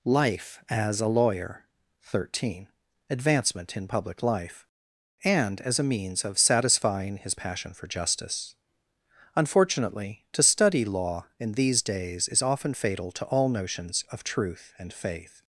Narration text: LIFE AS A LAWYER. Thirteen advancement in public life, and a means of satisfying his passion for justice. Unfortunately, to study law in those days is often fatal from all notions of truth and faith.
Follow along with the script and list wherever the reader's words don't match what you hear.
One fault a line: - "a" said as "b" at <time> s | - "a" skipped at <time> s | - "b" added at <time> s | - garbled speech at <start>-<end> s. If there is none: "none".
- "as" added at 5.6 s
- "those" said as "these" at 11.5 s
- "from" said as "to" at 13.1 s